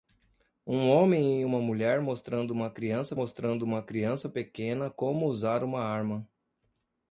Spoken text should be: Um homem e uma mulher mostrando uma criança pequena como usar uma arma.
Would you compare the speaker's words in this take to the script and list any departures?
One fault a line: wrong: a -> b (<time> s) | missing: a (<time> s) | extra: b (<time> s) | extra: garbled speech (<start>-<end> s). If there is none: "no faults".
extra: mostrando uma criança (3.1 s)